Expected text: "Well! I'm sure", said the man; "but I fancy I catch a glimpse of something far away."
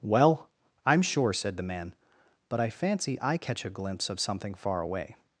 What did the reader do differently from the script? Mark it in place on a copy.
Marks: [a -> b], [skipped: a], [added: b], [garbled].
"Well! I'm sure", said the man; "but I fancy I catch a glimpse of something far away."